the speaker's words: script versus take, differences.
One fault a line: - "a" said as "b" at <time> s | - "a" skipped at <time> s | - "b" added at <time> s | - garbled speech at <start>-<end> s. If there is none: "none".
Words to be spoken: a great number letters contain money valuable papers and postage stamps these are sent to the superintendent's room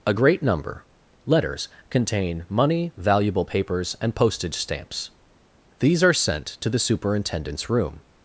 none